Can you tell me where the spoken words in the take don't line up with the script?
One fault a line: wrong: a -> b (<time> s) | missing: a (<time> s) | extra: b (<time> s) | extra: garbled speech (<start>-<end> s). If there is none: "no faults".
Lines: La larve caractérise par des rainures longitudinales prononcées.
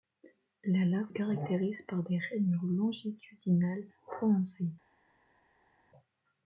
no faults